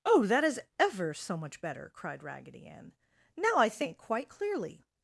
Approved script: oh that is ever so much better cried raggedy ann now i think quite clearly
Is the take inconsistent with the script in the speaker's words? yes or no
no